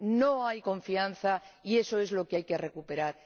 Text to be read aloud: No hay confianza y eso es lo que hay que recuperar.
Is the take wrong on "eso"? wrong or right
right